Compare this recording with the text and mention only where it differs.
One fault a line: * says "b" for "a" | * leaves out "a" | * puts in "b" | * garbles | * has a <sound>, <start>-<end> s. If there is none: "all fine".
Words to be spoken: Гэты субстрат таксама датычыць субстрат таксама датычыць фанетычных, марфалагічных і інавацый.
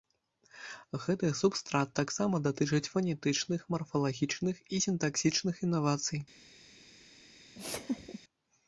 * leaves out "субстрат таксама датычыць"
* puts in "сінтаксічных"
* has a laugh, 7.5-8.2 s